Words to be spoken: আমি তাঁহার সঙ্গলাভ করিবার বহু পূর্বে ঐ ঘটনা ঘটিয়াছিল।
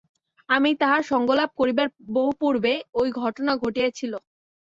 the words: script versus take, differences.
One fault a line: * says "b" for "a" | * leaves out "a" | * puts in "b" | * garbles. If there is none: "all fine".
all fine